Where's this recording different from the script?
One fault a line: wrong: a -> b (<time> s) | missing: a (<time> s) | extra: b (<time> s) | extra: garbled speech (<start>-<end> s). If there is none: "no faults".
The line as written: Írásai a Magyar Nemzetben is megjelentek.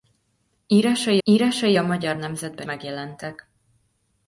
extra: írásai (1.2 s)
missing: is (2.7 s)